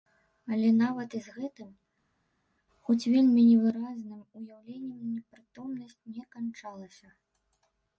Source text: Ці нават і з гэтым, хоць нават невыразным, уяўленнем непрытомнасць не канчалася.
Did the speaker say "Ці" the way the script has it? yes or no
no